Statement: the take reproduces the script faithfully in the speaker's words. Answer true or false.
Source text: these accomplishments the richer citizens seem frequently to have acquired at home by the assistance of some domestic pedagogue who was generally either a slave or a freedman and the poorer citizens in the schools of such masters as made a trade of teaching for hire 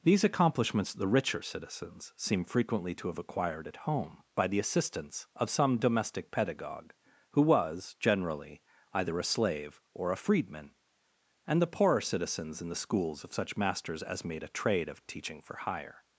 true